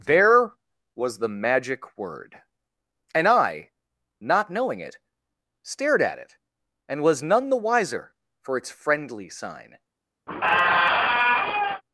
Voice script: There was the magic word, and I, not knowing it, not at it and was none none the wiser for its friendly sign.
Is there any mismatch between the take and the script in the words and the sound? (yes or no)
yes